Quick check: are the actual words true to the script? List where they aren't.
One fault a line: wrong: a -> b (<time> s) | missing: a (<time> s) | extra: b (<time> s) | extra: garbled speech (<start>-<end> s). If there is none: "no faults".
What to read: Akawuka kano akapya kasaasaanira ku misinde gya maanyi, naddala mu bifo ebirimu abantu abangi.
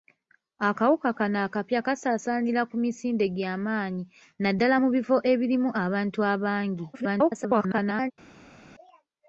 extra: garbled speech (6.9-8.1 s)